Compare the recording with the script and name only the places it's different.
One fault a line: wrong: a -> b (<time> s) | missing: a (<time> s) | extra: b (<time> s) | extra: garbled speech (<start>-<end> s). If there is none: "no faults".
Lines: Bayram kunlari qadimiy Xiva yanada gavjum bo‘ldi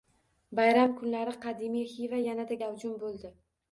no faults